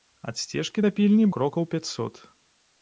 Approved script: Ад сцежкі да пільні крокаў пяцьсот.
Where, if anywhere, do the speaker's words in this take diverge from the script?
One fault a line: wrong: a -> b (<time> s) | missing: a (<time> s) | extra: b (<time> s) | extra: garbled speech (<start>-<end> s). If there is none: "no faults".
no faults